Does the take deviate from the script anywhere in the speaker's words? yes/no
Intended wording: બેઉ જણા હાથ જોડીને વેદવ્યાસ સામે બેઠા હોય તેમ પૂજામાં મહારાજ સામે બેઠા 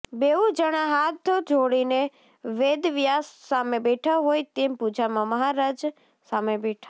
no